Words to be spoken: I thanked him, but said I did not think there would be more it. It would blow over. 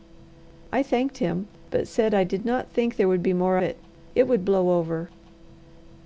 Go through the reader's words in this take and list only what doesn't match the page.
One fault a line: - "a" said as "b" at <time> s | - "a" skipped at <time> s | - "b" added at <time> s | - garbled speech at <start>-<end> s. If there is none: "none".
none